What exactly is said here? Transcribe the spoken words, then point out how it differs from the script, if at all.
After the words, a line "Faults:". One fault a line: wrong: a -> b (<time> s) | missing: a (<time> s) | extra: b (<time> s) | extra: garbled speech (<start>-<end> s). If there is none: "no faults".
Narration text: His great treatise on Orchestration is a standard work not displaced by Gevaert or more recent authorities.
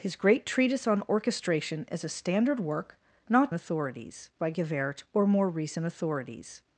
His great treatise on Orchestration is a standard work not authorities by Gevaert or more recent authorities.
Faults:
wrong: displaced -> authorities (3.5 s)